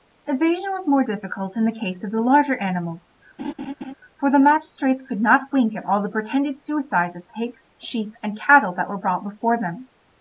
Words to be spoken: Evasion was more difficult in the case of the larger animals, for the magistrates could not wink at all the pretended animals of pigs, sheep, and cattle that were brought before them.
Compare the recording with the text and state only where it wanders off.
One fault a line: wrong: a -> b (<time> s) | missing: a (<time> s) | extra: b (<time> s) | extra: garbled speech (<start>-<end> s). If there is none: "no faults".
wrong: animals -> suicides (6.6 s)